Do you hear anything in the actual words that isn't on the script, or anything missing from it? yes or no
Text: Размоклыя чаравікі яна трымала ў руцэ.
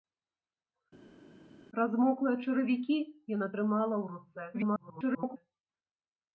yes